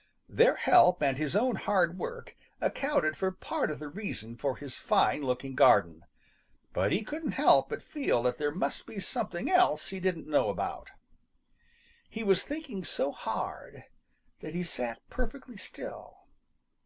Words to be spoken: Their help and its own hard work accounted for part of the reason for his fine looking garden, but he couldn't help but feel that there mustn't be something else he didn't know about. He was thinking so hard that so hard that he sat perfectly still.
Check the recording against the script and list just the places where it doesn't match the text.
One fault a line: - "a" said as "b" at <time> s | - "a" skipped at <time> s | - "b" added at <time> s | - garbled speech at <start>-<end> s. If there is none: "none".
- "its" said as "his" at 1.2 s
- "mustn't" said as "must" at 8.5 s
- "so hard that" skipped at 14.5 s